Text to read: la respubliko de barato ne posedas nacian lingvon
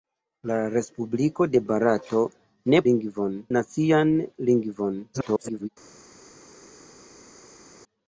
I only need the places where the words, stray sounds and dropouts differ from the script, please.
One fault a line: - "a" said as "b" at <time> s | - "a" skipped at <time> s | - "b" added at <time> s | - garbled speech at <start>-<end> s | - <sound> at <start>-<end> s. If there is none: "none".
- "posedas" said as "lingvon" at 2.9 s
- garbled speech at 5.1-5.7 s